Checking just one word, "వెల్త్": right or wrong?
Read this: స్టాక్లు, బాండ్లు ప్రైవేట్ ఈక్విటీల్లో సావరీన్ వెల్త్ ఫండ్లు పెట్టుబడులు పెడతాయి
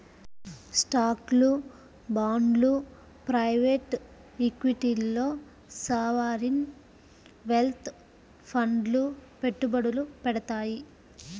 right